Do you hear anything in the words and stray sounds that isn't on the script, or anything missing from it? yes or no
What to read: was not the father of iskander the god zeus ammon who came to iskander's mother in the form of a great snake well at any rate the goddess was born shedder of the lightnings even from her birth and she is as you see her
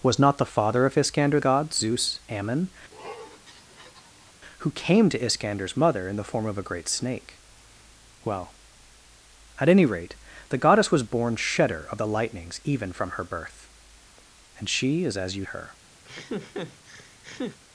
yes